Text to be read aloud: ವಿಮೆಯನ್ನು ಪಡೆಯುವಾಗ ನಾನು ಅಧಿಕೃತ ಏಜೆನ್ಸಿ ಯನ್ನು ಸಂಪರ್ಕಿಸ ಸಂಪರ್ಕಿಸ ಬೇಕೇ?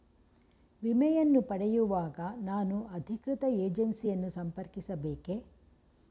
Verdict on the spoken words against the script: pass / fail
fail